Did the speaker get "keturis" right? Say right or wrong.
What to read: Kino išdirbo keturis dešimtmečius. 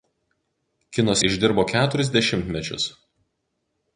right